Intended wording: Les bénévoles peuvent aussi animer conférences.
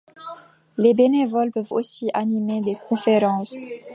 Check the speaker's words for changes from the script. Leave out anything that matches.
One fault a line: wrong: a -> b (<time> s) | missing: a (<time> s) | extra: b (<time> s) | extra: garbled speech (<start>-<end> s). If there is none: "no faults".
extra: des (2.6 s)